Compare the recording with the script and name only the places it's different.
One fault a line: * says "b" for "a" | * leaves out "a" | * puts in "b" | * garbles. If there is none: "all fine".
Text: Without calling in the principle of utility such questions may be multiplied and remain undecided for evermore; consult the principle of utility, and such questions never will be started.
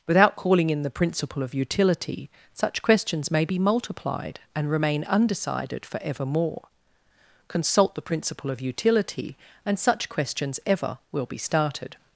* says "ever" for "never"